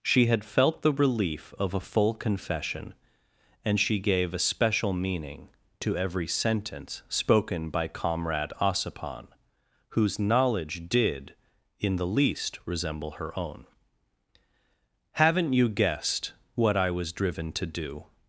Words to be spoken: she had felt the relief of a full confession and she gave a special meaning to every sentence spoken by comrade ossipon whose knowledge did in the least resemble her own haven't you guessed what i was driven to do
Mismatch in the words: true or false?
false